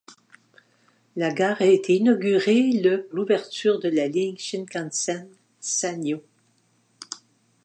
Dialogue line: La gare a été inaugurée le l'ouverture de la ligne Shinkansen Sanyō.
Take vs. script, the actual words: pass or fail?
pass